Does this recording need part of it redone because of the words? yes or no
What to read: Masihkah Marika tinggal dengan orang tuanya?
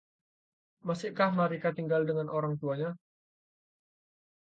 no